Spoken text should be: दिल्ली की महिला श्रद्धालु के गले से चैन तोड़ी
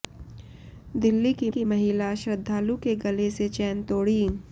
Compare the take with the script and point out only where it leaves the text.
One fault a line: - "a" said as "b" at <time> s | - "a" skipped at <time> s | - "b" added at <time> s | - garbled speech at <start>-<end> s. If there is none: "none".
- "की" added at 1.5 s